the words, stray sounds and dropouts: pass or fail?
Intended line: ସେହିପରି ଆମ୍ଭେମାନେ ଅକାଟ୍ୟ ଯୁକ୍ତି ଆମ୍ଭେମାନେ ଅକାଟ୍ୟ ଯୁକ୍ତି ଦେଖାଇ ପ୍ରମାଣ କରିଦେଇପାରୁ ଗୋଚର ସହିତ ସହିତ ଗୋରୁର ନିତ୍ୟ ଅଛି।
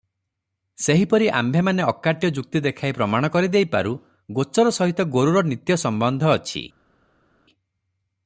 fail